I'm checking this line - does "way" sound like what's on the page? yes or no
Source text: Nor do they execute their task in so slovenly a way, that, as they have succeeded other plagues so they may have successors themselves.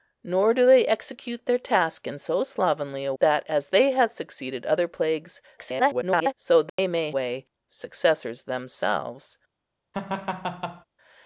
no